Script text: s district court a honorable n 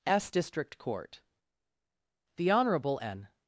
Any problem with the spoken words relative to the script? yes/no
yes